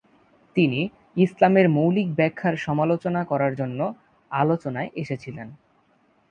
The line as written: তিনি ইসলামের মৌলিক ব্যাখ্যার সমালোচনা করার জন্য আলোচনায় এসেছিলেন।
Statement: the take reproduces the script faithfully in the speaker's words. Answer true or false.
true